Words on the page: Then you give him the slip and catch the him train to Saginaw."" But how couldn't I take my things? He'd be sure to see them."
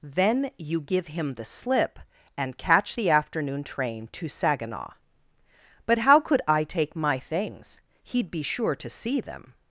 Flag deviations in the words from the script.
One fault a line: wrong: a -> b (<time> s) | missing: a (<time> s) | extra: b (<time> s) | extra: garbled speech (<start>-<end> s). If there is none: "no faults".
wrong: him -> afternoon (3.1 s)
wrong: couldn't -> could (6.2 s)